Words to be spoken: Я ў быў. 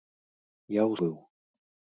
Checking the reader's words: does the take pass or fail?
pass